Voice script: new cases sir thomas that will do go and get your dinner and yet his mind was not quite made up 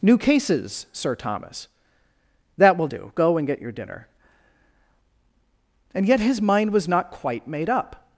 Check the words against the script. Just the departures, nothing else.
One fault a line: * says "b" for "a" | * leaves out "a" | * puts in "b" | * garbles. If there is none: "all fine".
all fine